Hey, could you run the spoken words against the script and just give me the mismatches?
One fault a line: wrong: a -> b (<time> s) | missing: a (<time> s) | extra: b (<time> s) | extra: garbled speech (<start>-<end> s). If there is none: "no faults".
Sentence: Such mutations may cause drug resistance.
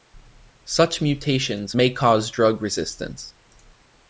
no faults